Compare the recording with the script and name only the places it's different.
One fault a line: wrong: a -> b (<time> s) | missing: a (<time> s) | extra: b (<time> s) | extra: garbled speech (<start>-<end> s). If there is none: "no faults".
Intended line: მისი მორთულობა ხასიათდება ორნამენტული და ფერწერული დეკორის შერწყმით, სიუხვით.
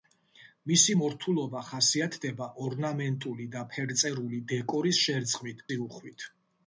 no faults